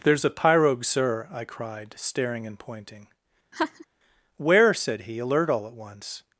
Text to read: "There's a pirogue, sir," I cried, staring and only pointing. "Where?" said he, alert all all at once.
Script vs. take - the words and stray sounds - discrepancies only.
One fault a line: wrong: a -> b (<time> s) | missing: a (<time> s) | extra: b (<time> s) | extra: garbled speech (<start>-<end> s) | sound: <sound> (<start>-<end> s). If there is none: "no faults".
missing: only (2.6 s)
sound: laugh (3.5-3.9 s)
missing: all (5.7 s)